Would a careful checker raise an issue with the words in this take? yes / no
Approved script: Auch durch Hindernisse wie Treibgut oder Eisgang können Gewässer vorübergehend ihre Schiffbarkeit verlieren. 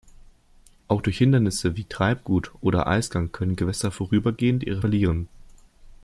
yes